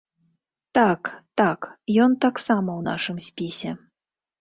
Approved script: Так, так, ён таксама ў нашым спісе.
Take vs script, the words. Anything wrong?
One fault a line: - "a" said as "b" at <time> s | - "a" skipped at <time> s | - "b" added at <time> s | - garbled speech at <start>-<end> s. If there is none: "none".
none